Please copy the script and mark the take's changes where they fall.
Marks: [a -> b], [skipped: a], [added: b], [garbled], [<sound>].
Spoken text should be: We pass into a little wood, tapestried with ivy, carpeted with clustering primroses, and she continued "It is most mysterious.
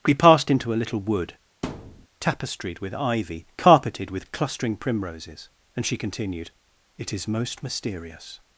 We [pass -> passed] into a little wood, [thud] tapestried with ivy, carpeted with clustering primroses, and she continued "It is most mysterious.